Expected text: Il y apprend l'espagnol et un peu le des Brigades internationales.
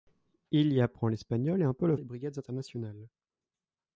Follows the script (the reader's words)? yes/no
yes